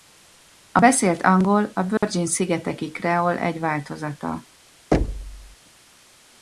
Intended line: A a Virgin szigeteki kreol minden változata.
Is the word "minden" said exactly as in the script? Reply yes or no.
no